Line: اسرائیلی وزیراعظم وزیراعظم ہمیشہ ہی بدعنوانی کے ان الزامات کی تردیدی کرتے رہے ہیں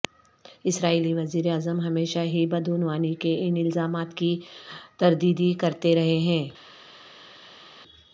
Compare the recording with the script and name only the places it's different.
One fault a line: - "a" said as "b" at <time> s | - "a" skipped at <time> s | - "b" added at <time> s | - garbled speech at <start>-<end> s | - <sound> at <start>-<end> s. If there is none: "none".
- "وزیراعظم" skipped at 1.8 s